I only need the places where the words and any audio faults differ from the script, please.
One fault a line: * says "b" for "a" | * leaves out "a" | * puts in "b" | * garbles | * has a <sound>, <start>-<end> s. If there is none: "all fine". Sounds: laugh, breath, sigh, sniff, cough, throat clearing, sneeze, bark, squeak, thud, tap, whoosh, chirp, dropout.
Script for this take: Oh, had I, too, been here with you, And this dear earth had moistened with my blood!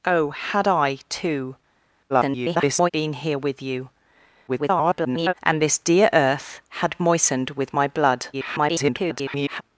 * garbles
* garbles
* garbles